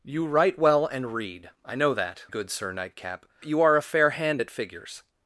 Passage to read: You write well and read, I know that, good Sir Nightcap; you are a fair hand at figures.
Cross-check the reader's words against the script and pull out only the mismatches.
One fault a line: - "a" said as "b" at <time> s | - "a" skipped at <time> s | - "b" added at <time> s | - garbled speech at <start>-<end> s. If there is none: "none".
none